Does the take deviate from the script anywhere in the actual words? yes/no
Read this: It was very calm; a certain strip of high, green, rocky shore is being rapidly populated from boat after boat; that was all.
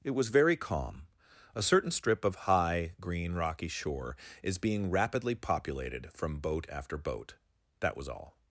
no